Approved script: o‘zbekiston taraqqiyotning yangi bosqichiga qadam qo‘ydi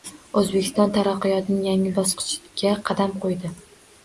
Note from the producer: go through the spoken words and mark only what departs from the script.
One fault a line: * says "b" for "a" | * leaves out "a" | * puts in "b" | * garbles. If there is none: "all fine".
all fine